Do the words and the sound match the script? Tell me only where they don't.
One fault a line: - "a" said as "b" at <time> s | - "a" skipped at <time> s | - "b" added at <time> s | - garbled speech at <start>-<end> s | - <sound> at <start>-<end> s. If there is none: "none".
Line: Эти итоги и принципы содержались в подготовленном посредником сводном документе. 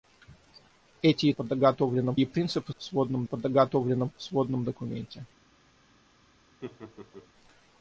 - "итоги" said as "подготовленном" at 1.3 s
- "содержались" said as "сводном" at 2.8 s
- "посредником" skipped at 4.1 s
- laugh at 6.6-7.3 s